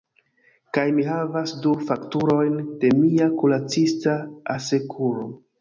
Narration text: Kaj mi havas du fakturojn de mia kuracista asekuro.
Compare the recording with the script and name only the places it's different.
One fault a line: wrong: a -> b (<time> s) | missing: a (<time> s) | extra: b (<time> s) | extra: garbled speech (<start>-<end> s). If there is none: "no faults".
no faults